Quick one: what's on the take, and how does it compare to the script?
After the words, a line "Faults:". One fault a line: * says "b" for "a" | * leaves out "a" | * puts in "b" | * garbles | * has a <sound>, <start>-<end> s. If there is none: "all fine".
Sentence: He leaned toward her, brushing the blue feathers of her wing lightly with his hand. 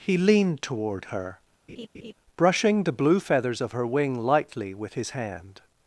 He leaned toward her, brushing the blue feathers of her wing lightly with his hand.
Faults:
* has a laugh, 1.7-2.1 s